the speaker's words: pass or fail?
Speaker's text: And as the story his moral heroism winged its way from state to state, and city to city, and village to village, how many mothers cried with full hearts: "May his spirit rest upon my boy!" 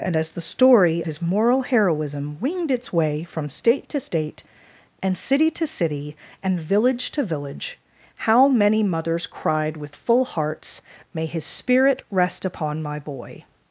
pass